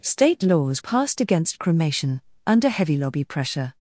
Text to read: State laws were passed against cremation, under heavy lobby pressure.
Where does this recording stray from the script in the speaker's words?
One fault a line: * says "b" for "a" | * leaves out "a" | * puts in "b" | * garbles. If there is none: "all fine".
* leaves out "were"